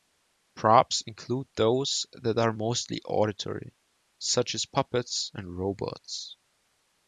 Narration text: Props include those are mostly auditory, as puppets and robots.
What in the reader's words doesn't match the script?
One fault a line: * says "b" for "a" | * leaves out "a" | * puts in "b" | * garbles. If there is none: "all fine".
* puts in "that"
* puts in "such"